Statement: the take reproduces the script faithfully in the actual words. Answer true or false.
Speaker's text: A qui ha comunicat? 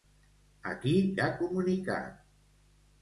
true